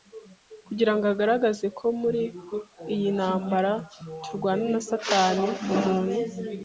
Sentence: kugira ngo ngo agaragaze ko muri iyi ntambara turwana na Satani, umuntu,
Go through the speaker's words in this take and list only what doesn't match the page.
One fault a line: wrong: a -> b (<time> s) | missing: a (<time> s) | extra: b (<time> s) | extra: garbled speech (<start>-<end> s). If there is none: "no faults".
missing: ngo (1.1 s)